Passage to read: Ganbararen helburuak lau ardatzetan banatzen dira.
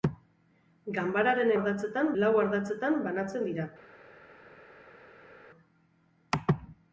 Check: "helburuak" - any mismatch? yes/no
yes